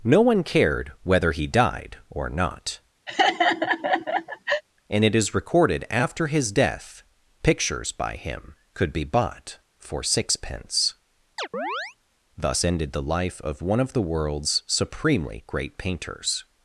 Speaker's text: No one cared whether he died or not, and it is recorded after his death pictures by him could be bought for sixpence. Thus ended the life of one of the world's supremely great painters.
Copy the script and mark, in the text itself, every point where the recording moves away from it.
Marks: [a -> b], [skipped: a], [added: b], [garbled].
No one cared whether he died or not, and it is recorded after his death pictures by him could be bought for sixpence. Thus ended the life of one of the world's supremely great painters.